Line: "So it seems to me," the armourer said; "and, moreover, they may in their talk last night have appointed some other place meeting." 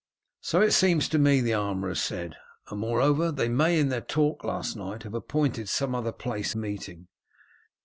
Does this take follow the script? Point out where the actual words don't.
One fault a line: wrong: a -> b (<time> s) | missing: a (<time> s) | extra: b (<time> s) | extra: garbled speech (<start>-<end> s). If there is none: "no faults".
no faults